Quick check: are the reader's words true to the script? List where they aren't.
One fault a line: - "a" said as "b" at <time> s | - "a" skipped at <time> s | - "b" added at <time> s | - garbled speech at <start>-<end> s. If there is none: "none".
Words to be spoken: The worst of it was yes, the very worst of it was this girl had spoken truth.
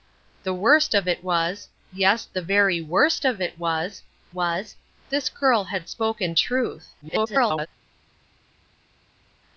- "was" added at 4.3 s
- garbled speech at 7.0-7.7 s